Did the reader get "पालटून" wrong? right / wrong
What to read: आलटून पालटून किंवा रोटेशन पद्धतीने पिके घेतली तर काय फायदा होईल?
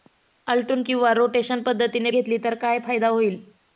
wrong